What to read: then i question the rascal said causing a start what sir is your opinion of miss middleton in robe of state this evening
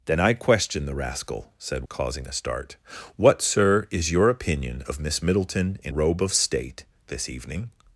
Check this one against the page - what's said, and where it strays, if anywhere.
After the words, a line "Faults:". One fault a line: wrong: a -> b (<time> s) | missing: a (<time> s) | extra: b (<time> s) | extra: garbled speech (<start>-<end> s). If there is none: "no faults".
then i question the rascal said causing a start what sir is your opinion of miss middleton in robe of state this evening
Faults:
no faults